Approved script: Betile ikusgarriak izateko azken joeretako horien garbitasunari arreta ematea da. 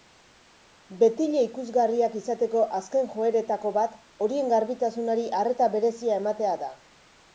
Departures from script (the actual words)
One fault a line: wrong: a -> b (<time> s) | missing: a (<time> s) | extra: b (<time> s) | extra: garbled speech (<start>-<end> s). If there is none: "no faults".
extra: bat (3.8 s)
extra: berezia (5.7 s)